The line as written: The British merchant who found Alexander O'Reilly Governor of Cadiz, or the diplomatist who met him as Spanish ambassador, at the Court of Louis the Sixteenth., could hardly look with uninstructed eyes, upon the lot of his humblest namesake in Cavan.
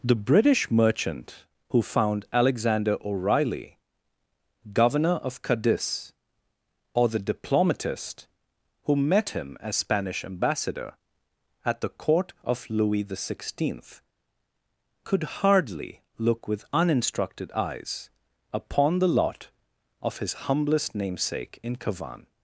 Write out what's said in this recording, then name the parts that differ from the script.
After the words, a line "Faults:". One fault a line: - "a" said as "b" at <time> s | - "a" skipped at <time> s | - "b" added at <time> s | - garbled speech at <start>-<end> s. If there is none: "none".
The British merchant who found Alexander O'Reilly Governor of Cadiz, or the diplomatist who met him as Spanish ambassador, at the Court of Louis the Sixteenth., could hardly look with uninstructed eyes, upon the lot of his humblest namesake in Cavan.
Faults:
none